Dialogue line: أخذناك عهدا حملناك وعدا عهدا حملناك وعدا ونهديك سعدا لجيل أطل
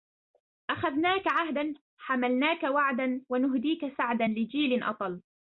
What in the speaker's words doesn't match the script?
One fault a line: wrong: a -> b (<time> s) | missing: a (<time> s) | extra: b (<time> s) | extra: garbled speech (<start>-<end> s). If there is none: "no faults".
missing: عهدا حملناك وعدا (3.2 s)